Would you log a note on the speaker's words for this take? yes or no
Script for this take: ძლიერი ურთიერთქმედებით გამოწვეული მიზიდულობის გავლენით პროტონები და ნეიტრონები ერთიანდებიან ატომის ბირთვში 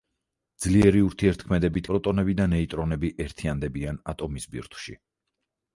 yes